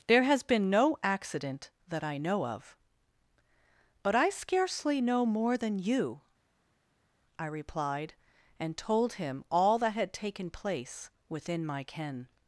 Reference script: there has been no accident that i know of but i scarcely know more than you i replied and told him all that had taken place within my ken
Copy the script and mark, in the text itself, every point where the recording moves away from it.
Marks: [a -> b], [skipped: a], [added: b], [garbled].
there has been no accident that i know of but i scarcely know more than you i replied and told him all that had taken place within my ken